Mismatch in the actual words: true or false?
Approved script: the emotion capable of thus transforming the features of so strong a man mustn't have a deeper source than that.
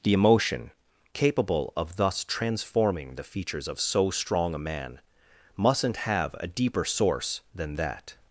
false